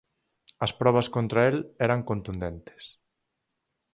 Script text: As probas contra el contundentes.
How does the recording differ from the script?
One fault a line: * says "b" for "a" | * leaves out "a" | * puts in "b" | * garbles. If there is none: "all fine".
* puts in "eran"